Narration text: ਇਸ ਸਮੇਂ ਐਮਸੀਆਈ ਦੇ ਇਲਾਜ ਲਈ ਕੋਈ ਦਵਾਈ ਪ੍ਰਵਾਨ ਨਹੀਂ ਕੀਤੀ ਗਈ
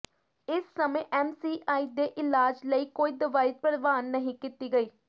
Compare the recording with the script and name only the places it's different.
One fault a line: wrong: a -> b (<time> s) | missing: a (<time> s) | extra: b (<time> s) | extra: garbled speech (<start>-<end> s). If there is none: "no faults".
no faults